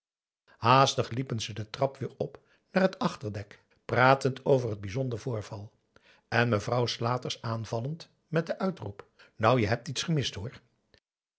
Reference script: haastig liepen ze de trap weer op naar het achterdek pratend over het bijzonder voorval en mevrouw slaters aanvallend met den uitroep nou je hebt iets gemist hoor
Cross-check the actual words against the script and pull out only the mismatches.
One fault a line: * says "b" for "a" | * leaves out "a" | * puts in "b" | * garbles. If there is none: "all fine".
all fine